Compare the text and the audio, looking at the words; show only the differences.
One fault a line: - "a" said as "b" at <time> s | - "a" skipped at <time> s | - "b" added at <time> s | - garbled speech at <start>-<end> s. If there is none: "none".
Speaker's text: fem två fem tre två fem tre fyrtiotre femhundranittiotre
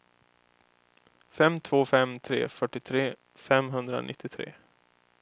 - "två fem tre" skipped at 2.5 s